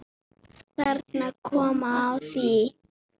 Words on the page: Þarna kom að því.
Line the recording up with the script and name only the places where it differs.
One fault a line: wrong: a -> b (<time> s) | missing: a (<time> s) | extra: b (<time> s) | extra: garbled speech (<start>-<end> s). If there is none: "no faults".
no faults